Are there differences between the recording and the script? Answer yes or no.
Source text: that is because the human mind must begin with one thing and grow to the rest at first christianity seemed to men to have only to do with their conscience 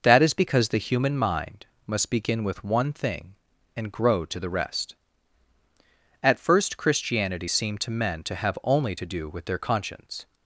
no